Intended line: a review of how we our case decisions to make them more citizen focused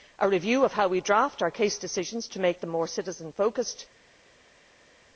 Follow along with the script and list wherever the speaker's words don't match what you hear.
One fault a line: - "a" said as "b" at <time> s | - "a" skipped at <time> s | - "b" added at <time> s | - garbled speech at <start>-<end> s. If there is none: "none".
- "draft" added at 1.0 s